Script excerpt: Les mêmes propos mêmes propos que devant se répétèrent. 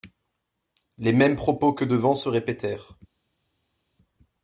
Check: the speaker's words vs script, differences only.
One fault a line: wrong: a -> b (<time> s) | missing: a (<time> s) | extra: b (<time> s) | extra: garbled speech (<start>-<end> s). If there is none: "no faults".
missing: mêmes propos (1.7 s)